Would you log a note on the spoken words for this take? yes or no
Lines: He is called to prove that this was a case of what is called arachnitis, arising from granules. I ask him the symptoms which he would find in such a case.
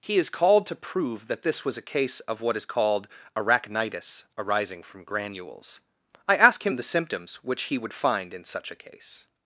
no